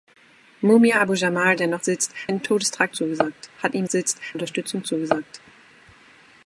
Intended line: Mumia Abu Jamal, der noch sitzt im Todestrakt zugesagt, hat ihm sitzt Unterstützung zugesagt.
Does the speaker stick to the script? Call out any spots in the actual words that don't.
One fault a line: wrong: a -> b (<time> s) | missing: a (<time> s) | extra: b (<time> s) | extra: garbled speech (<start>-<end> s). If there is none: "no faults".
no faults